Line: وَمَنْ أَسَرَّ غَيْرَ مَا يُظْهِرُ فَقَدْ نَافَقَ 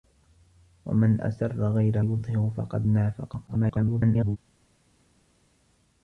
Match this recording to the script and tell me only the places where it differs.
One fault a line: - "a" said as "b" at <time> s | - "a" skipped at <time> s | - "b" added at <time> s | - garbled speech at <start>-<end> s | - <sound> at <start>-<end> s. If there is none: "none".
- "مَا" skipped at 2.0 s
- garbled speech at 3.5-4.4 s